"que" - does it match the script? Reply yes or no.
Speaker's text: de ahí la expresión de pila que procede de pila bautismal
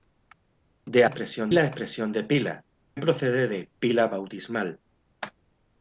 no